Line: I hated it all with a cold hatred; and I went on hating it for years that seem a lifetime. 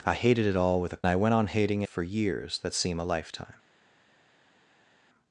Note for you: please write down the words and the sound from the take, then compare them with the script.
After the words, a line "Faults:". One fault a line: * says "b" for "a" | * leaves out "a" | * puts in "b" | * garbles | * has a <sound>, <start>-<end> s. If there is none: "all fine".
I hated it all with a I went on hating for years that seem a lifetime.
Faults:
* leaves out "cold hatred and"
* leaves out "it"